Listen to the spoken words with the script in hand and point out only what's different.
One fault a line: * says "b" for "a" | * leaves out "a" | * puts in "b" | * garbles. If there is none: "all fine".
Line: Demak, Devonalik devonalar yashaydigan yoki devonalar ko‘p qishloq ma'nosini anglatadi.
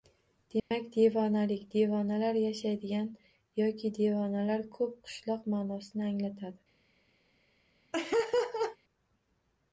all fine